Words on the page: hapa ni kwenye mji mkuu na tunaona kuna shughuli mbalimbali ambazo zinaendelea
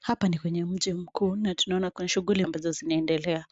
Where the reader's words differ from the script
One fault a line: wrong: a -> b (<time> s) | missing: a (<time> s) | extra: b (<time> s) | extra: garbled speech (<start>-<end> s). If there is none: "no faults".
missing: mbalimbali (2.5 s)